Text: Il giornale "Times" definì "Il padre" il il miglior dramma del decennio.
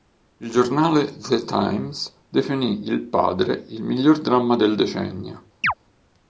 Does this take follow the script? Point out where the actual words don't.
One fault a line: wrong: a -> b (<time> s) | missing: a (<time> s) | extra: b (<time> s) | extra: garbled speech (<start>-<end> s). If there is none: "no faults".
extra: The (1.1 s)
missing: il (3.8 s)